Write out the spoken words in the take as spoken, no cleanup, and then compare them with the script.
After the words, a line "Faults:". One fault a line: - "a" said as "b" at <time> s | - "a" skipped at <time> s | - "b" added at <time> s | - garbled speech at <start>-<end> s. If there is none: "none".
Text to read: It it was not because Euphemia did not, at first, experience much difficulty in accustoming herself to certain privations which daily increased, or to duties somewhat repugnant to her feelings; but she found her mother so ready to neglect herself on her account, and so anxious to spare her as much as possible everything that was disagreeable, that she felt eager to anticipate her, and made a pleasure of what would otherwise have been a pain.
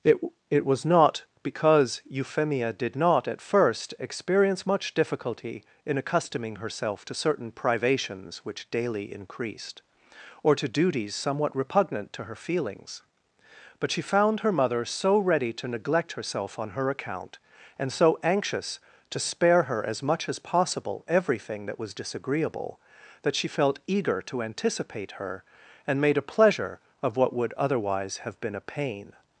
It it was not because Euphemia did not, at first, experience much difficulty in accustoming herself to certain privations which daily increased, or to duties somewhat repugnant to her feelings; but she found her mother so ready to neglect herself on her account, and so anxious to spare her as much as possible everything that was disagreeable, that she felt eager to anticipate her, and made a pleasure of what would otherwise have been a pain.
Faults:
none